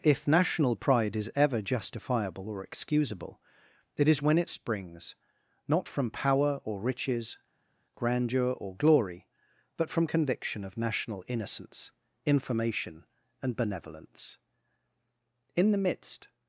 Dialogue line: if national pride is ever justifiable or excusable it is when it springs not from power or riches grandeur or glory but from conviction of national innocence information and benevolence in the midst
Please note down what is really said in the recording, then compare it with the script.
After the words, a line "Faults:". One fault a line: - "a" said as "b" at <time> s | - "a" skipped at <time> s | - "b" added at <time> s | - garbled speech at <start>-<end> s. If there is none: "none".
if national pride is ever justifiable or excusable it is when it springs not from power or riches grandeur or glory but from conviction of national innocence information and benevolence in the midst
Faults:
none